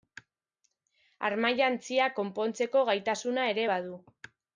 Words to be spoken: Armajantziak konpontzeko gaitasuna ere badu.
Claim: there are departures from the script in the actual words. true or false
false